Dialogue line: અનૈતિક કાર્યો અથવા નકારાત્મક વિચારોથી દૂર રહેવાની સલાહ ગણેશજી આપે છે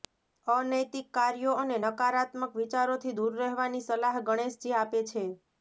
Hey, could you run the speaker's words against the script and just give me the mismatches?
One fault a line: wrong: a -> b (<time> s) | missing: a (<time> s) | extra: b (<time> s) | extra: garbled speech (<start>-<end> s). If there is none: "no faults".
wrong: અથવા -> અને (1.6 s)